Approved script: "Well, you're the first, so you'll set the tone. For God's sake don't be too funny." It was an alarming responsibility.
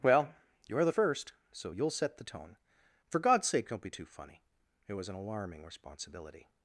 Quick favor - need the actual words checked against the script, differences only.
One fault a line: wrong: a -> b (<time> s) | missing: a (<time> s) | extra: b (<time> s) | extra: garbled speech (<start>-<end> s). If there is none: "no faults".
no faults